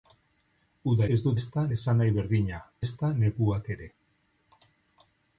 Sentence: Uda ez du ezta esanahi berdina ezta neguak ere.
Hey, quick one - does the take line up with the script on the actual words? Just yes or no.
yes